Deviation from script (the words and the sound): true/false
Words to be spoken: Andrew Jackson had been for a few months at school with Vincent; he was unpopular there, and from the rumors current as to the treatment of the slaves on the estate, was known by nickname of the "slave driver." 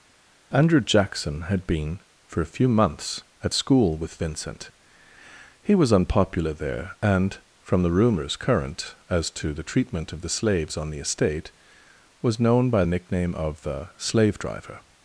false